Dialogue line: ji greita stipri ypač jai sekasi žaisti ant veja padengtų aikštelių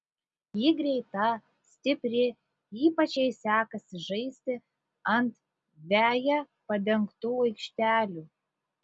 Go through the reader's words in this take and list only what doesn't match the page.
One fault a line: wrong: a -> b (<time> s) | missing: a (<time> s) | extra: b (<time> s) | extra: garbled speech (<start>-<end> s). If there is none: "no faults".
no faults